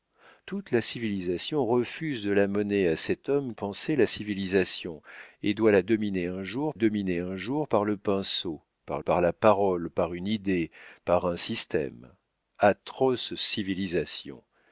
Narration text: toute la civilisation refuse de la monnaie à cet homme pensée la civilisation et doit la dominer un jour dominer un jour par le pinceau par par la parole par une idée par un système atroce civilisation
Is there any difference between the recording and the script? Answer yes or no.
no